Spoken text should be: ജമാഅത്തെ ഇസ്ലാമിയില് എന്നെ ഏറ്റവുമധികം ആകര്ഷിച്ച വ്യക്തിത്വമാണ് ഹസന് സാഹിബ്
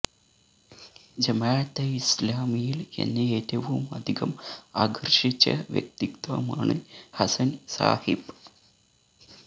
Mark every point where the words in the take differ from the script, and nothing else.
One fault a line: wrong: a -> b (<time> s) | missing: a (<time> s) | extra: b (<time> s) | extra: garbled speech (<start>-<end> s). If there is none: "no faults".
no faults